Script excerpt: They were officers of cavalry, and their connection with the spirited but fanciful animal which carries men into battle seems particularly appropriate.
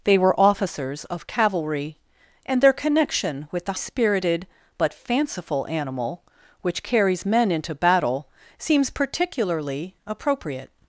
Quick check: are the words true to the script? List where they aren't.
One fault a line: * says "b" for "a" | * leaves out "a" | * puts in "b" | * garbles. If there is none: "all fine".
all fine